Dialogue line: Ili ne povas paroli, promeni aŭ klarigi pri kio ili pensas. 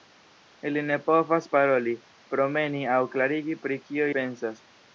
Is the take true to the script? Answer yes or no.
no